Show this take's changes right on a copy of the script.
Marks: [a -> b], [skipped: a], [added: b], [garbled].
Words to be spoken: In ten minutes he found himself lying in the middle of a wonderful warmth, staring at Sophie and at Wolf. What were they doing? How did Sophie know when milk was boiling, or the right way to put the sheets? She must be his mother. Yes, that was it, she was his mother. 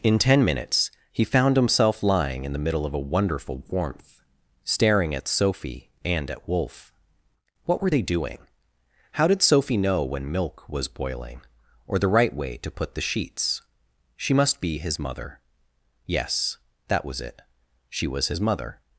In ten minutes he found himself lying in the middle of a wonderful warmth, staring at Sophie and at Wolf. What were they doing? How did Sophie know when milk was boiling, or the right way to put the sheets? She must be his mother. Yes, that was it, she was his mother.